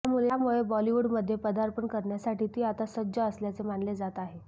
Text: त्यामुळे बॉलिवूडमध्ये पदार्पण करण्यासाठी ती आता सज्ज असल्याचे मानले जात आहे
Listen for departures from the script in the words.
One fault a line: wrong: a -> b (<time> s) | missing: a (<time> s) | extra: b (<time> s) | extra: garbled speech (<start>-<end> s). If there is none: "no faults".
no faults